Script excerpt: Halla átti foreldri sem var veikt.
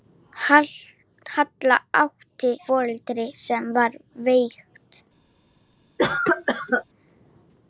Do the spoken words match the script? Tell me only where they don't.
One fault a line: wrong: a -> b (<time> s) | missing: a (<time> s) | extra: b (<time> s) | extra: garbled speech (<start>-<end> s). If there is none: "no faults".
no faults